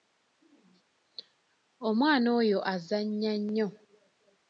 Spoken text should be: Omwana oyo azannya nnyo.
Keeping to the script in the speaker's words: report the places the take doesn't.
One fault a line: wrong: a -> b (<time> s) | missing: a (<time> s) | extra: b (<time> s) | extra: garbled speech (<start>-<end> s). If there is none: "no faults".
no faults